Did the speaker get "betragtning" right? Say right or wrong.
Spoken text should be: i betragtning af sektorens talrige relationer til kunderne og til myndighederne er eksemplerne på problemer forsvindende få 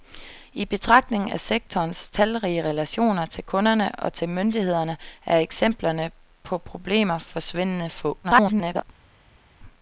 right